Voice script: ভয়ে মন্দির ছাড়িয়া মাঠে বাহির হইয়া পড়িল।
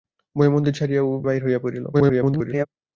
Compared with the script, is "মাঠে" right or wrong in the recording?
wrong